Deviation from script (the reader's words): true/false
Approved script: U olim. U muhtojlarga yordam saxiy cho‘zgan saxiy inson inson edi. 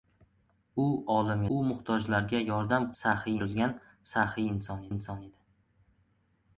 false